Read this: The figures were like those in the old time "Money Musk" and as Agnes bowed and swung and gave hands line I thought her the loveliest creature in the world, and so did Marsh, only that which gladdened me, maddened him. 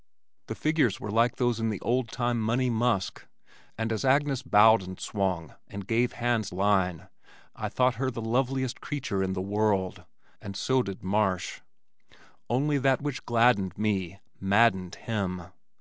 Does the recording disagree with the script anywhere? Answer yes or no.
no